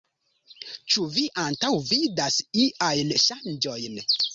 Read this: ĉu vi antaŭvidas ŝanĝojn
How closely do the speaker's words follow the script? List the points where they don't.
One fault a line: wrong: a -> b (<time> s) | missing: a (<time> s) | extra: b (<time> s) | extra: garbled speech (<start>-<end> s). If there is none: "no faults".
extra: iajn (2.7 s)